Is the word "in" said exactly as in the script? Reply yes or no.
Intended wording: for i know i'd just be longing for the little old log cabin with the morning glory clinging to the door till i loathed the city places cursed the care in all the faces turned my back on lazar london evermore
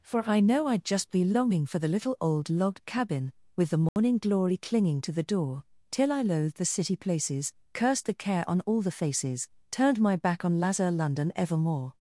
no